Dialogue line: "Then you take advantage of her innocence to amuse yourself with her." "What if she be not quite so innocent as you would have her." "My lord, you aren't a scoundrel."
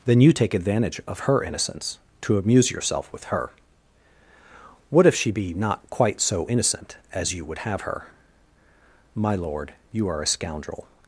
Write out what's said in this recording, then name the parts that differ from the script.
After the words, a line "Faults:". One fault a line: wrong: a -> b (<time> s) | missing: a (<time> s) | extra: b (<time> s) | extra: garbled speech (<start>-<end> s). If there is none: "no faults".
"Then you take advantage of her innocence to amuse yourself with her." "What if she be not quite so innocent as you would have her." "My lord, you are a scoundrel."
Faults:
wrong: aren't -> are (10.1 s)